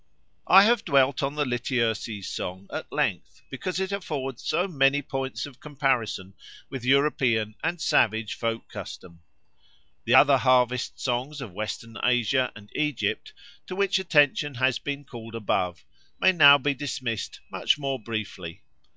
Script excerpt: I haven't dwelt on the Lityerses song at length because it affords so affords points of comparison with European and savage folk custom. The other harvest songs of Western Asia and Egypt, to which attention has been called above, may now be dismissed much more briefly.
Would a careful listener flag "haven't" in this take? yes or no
yes